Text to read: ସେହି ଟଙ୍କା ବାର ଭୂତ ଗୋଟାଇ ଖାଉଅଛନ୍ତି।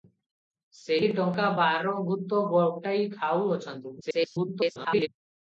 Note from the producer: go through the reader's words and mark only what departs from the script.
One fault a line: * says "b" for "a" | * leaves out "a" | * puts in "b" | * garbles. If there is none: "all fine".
* garbles